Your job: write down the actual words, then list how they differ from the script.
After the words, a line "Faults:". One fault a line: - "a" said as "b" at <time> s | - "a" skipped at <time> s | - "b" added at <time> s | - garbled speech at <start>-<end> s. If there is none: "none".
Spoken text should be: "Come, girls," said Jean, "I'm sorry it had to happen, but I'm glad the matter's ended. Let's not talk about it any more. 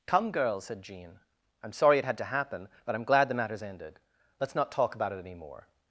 "Come, girls," said Jean, "I'm sorry it had to happen, but I'm glad the matter's ended. Let's not talk about it any more.
Faults:
none